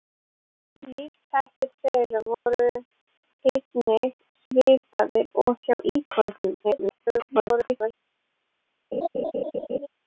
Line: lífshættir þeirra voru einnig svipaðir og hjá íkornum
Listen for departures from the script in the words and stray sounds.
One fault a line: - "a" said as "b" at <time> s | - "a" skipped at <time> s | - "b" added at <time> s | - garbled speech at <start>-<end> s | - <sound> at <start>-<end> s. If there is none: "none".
- dropout at 2.3-2.5 s
- garbled speech at 6.6-7.9 s
- laugh at 8.9-9.9 s